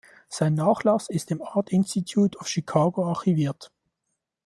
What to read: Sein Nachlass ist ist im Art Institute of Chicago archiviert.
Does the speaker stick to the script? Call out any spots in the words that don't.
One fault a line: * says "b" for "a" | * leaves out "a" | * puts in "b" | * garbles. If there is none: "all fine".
* leaves out "ist"